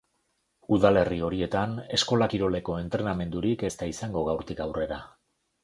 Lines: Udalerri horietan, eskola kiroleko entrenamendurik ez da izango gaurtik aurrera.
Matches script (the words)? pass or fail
pass